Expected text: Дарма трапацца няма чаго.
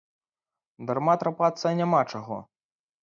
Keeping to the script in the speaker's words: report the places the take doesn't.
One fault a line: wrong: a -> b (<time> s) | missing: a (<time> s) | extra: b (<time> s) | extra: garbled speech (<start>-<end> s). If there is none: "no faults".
no faults